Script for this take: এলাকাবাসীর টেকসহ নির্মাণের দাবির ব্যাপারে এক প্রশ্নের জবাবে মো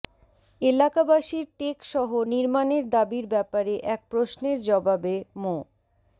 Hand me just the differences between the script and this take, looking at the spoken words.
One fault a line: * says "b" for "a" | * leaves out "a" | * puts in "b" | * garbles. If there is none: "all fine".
all fine